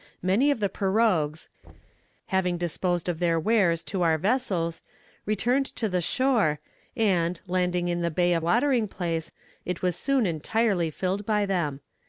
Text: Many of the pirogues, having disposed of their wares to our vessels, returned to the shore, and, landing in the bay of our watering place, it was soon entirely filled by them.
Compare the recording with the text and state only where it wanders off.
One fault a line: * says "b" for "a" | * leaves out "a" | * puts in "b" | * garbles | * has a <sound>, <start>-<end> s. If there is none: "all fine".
* has a thud, 1.6-2.1 s
* leaves out "our"